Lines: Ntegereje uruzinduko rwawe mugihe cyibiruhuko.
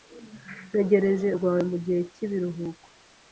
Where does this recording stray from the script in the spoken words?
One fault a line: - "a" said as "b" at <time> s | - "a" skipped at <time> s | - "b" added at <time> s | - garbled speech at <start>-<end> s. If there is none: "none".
- "uruzinduko" skipped at 1.3 s